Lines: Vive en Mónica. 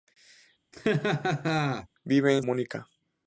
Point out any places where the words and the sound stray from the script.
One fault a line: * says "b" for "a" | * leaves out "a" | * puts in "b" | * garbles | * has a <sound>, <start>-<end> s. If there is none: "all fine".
* has a laugh, 0.7-1.9 s